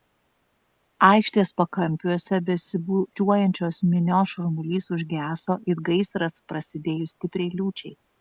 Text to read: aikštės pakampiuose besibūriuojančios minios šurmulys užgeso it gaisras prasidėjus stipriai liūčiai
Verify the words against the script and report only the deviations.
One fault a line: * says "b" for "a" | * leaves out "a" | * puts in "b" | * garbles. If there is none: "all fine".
all fine